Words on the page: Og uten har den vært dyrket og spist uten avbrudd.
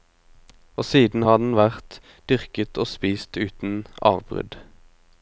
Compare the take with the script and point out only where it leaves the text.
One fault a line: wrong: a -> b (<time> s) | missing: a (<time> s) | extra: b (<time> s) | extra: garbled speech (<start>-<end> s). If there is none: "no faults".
wrong: uten -> siden (0.8 s)